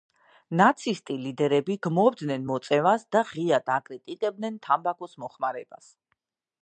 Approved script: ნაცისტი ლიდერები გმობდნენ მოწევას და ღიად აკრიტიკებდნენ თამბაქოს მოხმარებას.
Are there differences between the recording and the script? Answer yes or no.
no